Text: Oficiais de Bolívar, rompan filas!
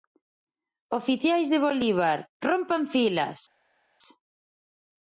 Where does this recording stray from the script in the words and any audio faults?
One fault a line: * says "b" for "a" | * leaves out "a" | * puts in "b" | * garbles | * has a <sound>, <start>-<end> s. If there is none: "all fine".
all fine